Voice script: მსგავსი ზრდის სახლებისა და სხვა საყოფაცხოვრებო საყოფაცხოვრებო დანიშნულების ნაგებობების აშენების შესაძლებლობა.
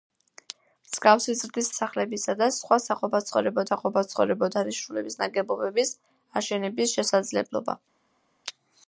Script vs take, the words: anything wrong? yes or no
no